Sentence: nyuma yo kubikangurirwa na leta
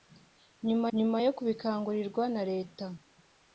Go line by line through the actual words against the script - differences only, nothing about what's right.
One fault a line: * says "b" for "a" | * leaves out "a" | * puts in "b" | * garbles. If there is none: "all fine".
* puts in "nyuma"